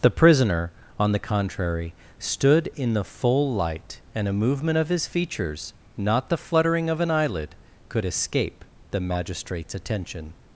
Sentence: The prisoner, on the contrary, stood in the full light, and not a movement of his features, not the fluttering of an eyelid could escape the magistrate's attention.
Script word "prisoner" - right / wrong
right